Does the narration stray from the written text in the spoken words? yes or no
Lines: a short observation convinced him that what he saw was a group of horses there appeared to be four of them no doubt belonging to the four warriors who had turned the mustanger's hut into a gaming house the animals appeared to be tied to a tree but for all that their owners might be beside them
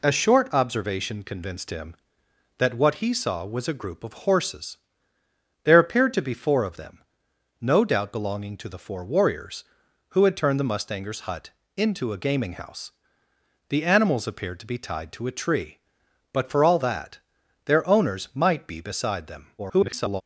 yes